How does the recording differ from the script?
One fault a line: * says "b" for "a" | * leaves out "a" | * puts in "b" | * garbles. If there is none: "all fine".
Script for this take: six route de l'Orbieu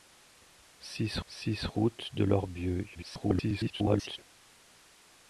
* puts in "six"
* garbles